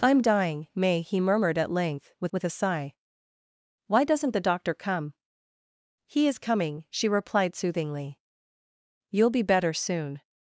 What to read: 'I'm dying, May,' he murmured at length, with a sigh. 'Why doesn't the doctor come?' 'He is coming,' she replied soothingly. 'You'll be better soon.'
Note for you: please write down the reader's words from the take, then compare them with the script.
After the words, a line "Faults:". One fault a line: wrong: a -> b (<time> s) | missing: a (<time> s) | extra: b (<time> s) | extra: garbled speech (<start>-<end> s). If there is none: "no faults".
'I'm dying, May,' he murmured at length, with with a sigh. 'Why doesn't the doctor come?' 'He is coming,' she replied soothingly. 'You'll be better soon.'
Faults:
extra: with (2.3 s)